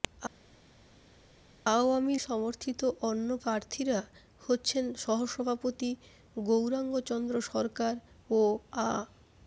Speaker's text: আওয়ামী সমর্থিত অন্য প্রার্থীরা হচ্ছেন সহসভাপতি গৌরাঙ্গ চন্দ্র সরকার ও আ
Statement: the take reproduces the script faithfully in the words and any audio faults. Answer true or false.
true